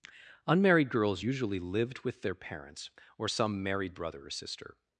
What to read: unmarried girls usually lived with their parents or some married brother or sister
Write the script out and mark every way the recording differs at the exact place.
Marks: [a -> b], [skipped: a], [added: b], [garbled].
unmarried girls usually lived with their parents or some married brother or sister